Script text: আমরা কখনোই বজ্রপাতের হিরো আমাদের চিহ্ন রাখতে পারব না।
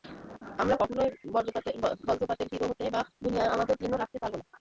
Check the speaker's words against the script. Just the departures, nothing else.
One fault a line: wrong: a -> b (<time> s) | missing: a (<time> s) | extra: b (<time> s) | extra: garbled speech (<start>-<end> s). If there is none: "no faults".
extra: হতে বা দুনিয়ায় (2.7 s)